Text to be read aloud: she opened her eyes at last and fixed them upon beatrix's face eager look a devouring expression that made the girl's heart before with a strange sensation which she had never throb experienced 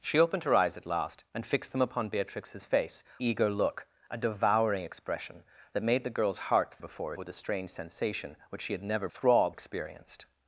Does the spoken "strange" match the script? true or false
true